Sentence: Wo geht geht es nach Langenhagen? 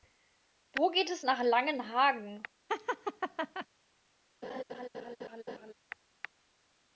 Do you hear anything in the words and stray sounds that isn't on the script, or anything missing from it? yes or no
yes